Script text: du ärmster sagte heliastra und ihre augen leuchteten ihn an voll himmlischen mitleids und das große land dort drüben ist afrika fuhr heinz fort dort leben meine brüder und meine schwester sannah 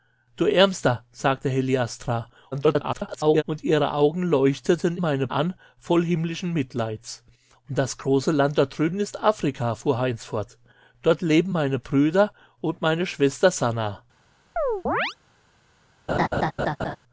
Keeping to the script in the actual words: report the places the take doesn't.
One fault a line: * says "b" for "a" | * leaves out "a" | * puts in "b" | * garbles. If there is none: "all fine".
* garbles
* says "meine" for "ihn"